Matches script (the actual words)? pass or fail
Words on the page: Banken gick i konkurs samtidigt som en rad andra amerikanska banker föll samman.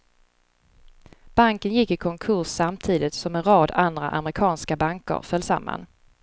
pass